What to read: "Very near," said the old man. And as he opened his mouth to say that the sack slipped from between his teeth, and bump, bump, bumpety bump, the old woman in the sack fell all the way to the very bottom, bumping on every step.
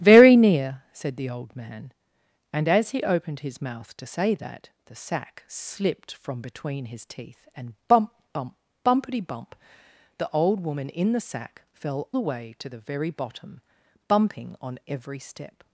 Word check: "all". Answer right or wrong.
wrong